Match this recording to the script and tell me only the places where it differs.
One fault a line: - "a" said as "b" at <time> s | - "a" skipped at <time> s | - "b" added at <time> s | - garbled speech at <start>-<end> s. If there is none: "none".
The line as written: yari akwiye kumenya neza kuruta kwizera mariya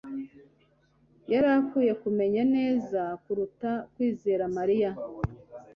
none